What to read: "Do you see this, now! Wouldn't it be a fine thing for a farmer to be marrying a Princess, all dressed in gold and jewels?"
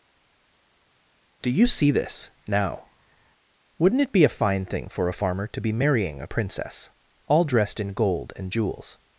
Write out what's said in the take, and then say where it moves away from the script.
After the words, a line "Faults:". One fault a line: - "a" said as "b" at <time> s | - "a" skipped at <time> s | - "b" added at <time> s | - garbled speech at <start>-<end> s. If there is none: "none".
"Do you see this, now! Wouldn't it be a fine thing for a farmer to be marrying a Princess, all dressed in gold and jewels?"
Faults:
none